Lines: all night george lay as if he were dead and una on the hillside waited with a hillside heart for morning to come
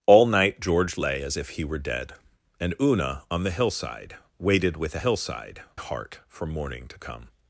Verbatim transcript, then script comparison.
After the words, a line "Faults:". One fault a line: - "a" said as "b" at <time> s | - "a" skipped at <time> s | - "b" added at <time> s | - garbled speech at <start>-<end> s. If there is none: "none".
all night george lay as if he were dead and una on the hillside waited with a hillside heart for morning to come
Faults:
none